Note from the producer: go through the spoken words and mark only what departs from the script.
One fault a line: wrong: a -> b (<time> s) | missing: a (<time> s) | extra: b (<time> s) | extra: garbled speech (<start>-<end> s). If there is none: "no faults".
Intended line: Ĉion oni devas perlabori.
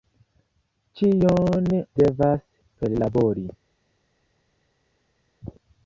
missing: oni (1.7 s)